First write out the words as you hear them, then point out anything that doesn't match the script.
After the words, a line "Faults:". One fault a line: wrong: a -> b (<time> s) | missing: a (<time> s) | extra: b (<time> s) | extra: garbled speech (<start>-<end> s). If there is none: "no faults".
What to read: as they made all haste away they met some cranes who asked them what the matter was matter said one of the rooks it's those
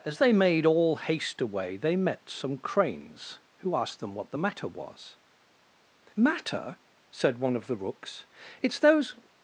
as they made all haste away they met some cranes who asked them what the matter was matter said one of the rooks it's those
Faults:
no faults